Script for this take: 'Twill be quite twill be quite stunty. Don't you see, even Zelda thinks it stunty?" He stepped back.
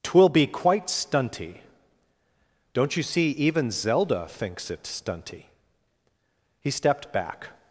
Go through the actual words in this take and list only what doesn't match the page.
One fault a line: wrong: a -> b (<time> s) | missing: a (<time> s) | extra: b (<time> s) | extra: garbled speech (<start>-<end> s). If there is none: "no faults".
missing: twill be quite (0.9 s)